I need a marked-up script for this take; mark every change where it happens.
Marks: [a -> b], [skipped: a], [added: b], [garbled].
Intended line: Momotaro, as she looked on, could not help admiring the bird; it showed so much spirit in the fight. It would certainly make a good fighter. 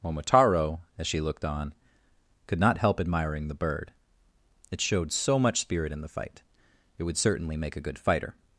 Momotaro, as she looked on, could not help admiring the bird; it showed so much spirit in the fight. It would certainly make a good fighter.